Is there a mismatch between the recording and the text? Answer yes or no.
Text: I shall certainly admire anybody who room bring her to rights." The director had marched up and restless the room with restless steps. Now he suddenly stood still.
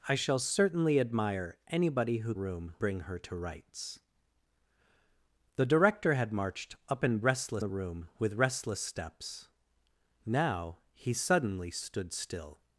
no